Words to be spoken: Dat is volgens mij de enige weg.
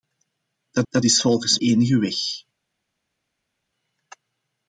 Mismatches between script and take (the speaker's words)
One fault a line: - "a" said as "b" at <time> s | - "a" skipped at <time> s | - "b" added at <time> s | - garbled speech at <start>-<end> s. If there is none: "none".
- "dat" added at 0.9 s
- "mij de" skipped at 1.6 s